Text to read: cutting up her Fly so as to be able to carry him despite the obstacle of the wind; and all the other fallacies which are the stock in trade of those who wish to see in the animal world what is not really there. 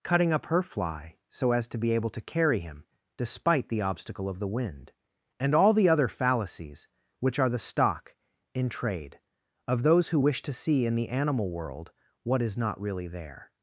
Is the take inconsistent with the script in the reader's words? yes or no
no